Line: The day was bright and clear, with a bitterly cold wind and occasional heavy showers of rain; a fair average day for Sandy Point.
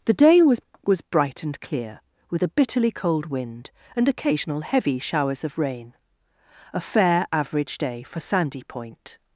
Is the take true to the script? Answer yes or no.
no